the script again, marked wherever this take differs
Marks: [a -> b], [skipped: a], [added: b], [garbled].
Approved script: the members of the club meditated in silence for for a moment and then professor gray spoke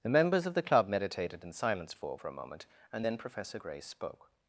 the members of the club meditated in silence for for a moment and then professor gray spoke